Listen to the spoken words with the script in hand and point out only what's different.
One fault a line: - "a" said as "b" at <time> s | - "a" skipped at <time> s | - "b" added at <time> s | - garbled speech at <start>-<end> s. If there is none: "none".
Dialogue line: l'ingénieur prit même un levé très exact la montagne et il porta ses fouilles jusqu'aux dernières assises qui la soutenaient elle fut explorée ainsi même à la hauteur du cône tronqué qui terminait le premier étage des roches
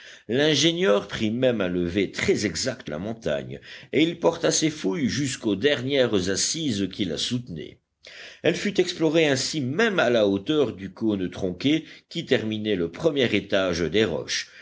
none